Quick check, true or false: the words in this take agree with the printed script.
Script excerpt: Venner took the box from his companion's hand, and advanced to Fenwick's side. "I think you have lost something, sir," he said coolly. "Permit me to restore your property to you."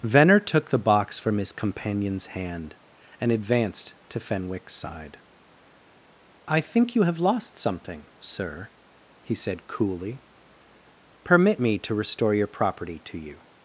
true